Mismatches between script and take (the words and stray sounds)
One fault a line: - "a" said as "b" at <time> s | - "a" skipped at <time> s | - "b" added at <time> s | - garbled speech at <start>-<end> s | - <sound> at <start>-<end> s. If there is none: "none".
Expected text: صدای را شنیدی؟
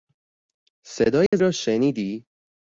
- dropout at 1.3-1.3 s